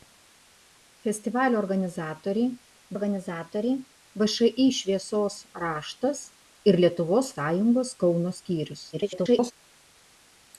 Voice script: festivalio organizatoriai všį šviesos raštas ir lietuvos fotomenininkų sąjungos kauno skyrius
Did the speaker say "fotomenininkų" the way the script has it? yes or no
no